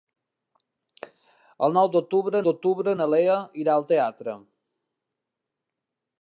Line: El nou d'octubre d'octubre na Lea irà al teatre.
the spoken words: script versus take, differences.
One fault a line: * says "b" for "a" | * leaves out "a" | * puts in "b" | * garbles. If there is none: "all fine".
all fine